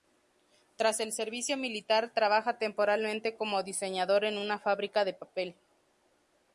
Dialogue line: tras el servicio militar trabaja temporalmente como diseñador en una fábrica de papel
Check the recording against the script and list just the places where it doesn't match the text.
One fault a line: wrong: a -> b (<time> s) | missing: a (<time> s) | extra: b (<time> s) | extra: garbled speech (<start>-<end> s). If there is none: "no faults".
no faults